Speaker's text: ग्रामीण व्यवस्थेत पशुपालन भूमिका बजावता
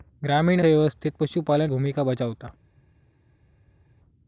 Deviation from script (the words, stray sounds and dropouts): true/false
false